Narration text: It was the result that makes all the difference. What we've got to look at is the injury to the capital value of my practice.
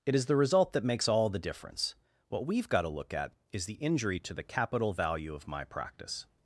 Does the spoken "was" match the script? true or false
false